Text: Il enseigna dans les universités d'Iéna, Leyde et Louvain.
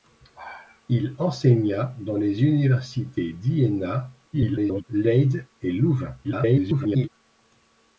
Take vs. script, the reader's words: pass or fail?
fail